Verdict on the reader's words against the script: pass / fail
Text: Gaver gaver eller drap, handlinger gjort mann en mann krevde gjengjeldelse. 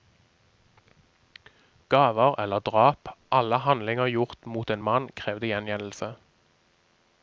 fail